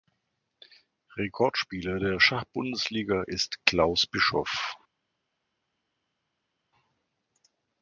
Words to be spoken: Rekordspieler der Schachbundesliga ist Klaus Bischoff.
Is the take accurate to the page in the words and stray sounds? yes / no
yes